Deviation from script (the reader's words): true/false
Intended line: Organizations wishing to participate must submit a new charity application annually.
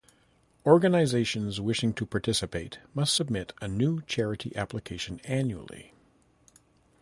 false